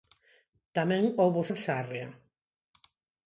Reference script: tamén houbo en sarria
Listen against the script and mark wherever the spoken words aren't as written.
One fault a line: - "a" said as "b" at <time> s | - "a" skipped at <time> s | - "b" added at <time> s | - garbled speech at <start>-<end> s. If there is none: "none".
none